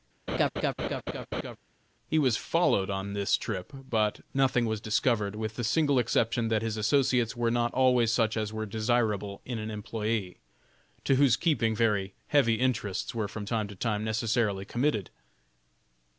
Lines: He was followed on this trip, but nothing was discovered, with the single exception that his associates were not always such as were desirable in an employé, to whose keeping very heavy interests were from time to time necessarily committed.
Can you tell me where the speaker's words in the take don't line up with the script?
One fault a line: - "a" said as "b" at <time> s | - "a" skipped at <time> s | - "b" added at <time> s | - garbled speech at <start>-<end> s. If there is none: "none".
none